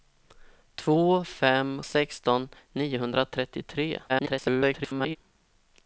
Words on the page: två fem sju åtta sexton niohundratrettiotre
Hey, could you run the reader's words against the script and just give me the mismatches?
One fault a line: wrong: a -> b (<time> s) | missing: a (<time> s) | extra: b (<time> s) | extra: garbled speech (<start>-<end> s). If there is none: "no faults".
missing: sju åtta (1.8 s)
extra: garbled speech (4.1-5.2 s)